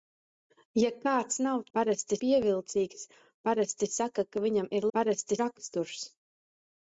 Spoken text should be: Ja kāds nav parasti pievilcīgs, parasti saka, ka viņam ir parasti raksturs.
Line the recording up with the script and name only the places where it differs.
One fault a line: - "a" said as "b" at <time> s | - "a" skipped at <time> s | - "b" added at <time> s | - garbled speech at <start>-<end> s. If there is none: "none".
none